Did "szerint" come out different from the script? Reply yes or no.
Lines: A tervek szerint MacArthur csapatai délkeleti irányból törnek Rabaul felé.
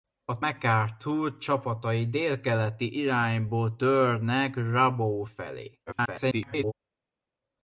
yes